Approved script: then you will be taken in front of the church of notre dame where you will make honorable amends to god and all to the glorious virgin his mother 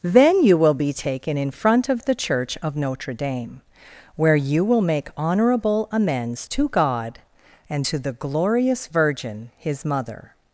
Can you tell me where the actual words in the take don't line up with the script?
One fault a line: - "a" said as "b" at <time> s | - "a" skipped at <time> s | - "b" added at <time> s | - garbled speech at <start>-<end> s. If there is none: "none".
- "all" skipped at 7.9 s